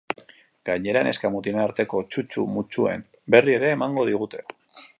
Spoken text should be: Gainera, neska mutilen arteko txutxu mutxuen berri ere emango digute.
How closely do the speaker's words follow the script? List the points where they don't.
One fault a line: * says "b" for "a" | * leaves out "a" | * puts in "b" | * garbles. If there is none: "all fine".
all fine